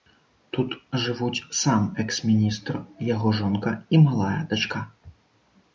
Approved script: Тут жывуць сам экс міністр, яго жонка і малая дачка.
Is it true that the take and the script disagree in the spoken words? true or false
false